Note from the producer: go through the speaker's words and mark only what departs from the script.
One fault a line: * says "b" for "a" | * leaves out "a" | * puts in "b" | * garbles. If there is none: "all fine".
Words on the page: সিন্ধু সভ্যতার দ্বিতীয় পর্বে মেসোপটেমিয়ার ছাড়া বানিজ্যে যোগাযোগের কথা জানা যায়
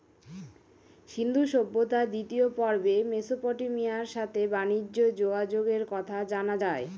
* says "সাথে" for "ছাড়া"